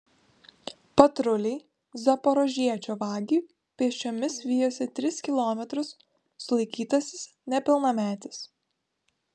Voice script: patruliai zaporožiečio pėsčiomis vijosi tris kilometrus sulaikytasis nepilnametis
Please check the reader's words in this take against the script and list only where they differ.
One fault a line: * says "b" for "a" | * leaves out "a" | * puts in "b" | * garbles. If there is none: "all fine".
* puts in "vagį"